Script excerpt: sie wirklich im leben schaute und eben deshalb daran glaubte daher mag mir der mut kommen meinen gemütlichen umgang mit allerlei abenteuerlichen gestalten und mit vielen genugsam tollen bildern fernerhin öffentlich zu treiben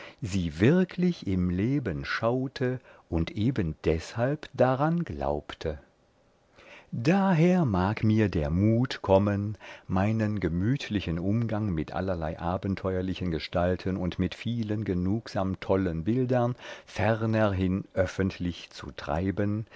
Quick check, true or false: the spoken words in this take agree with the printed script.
true